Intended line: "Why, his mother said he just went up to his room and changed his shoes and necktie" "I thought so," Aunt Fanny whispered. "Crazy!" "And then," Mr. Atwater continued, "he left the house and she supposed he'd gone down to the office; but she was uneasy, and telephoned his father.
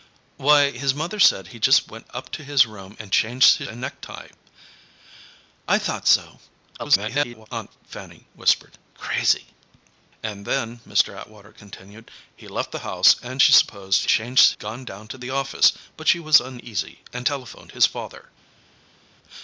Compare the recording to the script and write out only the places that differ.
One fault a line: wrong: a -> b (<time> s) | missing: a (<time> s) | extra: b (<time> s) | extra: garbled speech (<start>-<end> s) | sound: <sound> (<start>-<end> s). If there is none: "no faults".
missing: shoes (3.7 s)
extra: garbled speech (6.8-7.5 s)
wrong: he'd -> changed (14.1 s)